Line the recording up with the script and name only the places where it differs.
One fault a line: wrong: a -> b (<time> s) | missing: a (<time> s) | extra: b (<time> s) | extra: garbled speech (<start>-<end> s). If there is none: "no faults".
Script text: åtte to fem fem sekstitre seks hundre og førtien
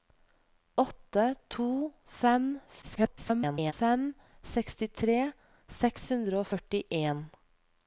extra: garbled speech (2.8-3.7 s)